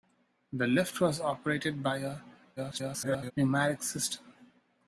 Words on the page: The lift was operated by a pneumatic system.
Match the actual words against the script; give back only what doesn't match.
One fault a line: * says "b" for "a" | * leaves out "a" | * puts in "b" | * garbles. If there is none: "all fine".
* garbles